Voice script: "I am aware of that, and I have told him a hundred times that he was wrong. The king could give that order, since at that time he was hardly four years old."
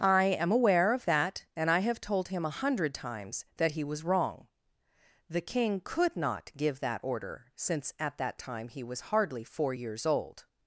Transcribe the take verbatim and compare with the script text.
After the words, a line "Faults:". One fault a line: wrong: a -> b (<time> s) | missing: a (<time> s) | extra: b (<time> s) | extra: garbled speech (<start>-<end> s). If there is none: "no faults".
"I am aware of that, and I have told him a hundred times that he was wrong. The king could not give that order, since at that time he was hardly four years old."
Faults:
extra: not (6.2 s)